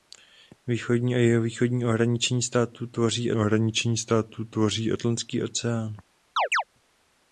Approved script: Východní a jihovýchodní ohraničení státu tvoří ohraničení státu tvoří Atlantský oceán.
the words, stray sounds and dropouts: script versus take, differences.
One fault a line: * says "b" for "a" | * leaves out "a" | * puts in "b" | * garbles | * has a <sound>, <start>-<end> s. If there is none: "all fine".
* has a chirp, 6.4-6.6 s